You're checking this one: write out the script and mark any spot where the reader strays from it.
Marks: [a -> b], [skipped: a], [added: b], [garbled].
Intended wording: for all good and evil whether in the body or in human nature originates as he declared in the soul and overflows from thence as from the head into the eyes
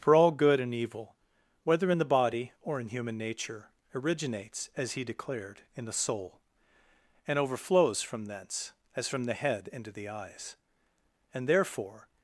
for all good and evil whether in the body or in human nature originates as he declared in the soul and overflows from thence as from the head into the eyes [added: and therefore]